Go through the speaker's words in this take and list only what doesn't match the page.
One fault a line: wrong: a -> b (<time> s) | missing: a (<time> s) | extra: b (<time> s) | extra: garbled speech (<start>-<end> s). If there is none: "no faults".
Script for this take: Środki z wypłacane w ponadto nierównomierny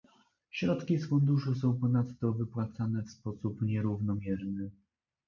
extra: funduszu są ponadto (1.1 s)
wrong: ponadto -> sposób (3.1 s)